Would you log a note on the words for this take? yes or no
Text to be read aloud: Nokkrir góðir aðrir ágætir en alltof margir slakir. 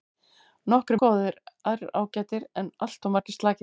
no